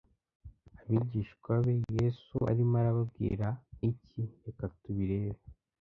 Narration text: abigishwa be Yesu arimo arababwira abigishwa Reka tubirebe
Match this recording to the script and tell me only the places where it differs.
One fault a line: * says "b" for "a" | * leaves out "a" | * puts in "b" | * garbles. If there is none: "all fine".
* says "iki" for "abigishwa"